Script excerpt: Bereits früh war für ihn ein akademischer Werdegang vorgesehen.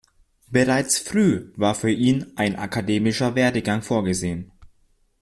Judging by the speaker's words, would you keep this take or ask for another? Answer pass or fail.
pass